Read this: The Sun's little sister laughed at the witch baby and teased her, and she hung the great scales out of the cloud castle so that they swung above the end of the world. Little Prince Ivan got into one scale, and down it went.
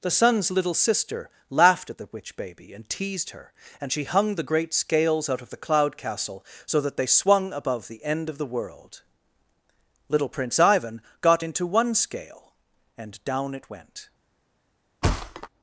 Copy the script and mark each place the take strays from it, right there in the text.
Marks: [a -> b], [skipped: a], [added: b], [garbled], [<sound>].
The Sun's little sister laughed at the witch baby and teased her, and she hung the great scales out of the cloud castle so that they swung above the end of the world. Little Prince Ivan got into one scale, and down it went. [thud]